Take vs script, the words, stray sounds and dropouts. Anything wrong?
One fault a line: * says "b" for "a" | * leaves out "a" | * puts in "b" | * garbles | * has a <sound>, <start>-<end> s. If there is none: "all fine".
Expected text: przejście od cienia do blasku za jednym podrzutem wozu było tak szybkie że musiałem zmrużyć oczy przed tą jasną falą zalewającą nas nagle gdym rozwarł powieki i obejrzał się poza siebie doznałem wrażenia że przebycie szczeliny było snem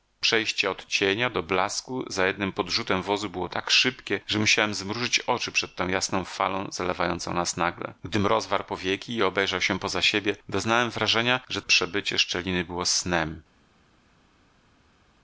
all fine